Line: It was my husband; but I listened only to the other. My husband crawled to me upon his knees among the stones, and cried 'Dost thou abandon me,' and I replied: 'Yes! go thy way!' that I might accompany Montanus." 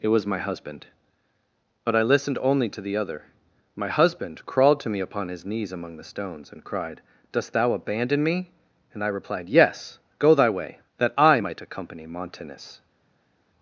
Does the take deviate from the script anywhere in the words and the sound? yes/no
no